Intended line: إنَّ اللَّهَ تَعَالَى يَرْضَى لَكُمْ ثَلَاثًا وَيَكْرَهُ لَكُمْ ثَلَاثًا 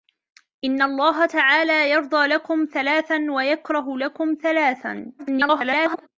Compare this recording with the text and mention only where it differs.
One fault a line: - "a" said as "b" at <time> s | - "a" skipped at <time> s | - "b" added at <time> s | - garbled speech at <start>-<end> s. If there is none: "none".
- garbled speech at 5.2-6.1 s